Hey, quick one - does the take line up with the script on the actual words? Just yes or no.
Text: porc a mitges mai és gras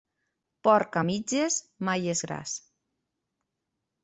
yes